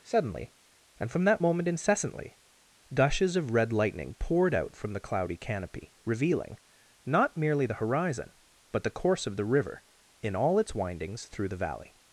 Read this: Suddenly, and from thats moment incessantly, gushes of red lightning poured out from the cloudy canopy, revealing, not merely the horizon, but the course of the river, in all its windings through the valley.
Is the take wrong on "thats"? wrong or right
wrong